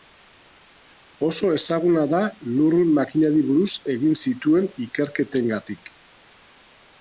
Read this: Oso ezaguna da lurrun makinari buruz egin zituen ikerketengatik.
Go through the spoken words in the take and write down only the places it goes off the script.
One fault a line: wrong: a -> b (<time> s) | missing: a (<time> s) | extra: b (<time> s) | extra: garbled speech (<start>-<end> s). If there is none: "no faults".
no faults